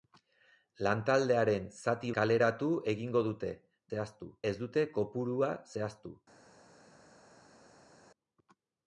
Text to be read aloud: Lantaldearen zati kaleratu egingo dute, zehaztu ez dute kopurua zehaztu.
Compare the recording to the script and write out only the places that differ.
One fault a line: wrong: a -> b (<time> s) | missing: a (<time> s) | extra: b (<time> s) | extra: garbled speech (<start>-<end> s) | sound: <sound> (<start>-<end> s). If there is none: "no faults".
no faults